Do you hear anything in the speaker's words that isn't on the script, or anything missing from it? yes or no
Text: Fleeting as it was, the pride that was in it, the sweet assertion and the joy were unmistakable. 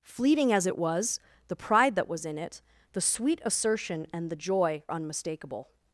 yes